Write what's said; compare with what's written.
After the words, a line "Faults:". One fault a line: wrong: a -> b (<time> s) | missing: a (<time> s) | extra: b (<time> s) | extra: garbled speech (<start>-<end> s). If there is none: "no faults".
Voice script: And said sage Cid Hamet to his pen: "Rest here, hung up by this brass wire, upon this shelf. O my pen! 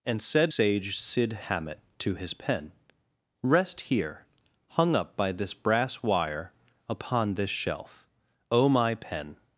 And said sage Cid Hamet to his pen: "Rest here, hung up by this brass wire, upon this shelf. O my pen!
Faults:
no faults